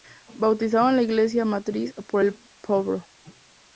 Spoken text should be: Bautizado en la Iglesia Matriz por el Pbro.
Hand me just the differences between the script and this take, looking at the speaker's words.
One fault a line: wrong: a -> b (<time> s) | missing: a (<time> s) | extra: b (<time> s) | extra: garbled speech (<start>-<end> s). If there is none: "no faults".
no faults